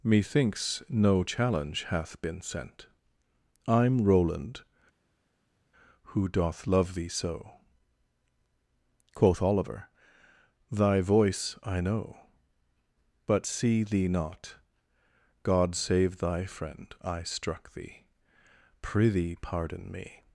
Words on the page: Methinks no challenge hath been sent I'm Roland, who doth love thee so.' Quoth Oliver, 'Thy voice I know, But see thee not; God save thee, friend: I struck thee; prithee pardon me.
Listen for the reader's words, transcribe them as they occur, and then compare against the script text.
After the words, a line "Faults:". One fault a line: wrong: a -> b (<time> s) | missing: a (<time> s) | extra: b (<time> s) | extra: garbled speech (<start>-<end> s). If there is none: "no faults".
Methinks no challenge hath been sent I'm Roland, who doth love thee so.' Quoth Oliver, 'Thy voice I know, But see thee not; God save thy, friend: I struck thee; prithee pardon me.
Faults:
wrong: thee -> thy (16.2 s)